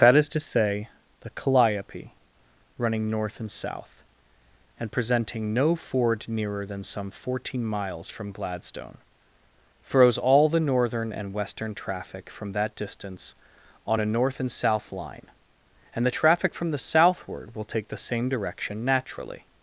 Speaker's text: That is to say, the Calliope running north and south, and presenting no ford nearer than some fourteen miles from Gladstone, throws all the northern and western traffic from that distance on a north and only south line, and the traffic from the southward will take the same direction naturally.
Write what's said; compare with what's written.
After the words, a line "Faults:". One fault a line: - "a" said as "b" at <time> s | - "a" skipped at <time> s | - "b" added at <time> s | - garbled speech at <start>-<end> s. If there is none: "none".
That is to say, the Calliope running north and south, and presenting no ford nearer than some fourteen miles from Gladstone, throws all the northern and western traffic from that distance on a north and south line, and the traffic from the southward will take the same direction naturally.
Faults:
- "only" skipped at 14.5 s